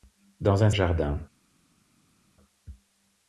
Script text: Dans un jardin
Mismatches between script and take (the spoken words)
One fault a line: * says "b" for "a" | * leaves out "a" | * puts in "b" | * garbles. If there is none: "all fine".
all fine